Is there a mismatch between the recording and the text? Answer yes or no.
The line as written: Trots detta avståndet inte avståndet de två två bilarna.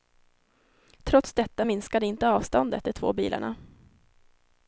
yes